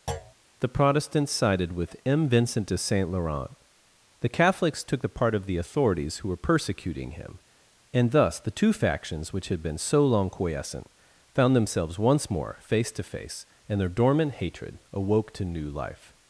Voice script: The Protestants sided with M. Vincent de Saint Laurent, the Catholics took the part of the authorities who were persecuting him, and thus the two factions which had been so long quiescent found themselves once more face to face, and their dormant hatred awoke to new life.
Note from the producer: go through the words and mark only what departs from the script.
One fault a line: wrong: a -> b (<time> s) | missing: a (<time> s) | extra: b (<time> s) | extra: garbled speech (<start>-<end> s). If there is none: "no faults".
no faults